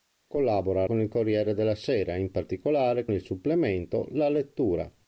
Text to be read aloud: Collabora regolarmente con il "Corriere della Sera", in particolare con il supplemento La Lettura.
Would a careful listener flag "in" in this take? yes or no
no